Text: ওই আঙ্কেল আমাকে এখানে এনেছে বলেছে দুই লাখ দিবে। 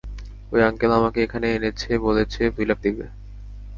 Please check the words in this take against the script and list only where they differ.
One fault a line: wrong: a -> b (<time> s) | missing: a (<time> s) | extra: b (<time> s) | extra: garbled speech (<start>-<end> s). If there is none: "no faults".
no faults